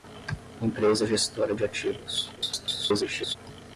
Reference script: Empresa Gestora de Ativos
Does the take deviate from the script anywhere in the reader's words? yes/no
yes